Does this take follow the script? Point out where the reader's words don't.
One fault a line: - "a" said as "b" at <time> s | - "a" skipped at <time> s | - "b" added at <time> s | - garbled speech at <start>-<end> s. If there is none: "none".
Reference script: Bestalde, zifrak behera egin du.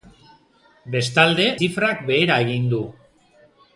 none